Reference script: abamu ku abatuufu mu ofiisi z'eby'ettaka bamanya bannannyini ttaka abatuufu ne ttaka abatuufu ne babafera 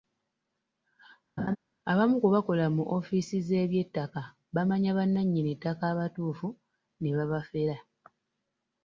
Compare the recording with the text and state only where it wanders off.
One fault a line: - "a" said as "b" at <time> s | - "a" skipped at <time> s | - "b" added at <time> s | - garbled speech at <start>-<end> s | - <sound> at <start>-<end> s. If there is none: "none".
- laugh at 1.4-1.6 s
- "abatuufu" said as "bakola" at 2.3 s
- "ttaka abatuufu ne" skipped at 7.1 s